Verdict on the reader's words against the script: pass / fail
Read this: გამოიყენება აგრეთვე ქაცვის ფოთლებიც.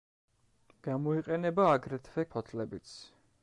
fail